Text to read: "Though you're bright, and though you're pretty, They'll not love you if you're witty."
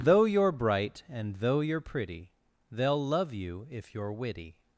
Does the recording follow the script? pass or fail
fail